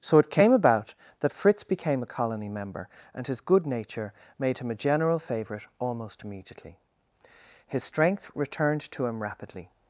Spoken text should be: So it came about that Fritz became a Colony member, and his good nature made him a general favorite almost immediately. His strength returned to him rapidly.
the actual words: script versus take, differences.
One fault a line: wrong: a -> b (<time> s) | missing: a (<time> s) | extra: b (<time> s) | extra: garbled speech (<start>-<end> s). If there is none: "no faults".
no faults